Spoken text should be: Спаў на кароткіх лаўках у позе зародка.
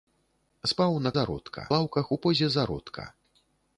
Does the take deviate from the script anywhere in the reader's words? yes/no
yes